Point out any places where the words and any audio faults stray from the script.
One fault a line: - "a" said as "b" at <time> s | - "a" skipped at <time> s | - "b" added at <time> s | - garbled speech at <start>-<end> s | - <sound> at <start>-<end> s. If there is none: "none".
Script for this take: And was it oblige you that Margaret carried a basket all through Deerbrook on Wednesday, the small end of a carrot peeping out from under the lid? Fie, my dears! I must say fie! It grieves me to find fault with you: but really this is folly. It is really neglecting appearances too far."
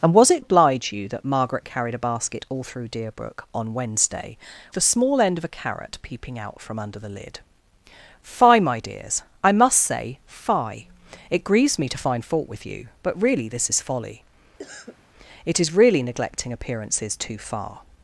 - cough at 14.6-15.0 s